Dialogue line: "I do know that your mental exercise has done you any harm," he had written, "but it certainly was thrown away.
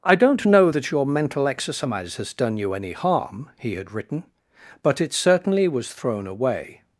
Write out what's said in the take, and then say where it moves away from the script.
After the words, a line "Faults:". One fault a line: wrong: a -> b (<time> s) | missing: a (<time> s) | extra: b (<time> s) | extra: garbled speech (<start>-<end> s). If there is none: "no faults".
"I don't know that your mental exercise has done you any harm," he had written, "but it certainly was thrown away.
Faults:
wrong: do -> don't (0.1 s)